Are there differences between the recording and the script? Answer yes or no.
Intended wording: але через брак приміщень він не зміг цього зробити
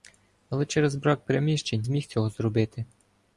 yes